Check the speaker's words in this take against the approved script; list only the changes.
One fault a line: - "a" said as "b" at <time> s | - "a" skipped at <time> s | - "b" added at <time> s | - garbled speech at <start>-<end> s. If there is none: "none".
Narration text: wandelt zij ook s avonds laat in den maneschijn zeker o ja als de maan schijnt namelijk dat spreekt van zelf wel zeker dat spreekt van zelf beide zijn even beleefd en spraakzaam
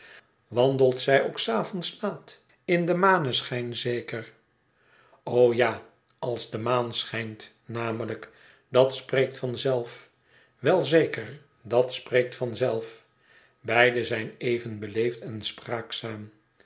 none